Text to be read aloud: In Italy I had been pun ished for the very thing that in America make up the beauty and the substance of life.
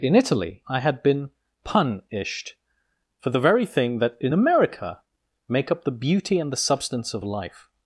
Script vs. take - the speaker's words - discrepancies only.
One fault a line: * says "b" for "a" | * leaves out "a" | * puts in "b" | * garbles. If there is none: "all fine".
all fine